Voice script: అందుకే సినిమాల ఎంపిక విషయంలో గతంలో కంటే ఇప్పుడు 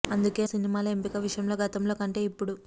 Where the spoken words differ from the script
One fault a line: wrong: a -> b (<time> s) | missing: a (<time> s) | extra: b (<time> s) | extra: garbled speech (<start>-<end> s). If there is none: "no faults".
no faults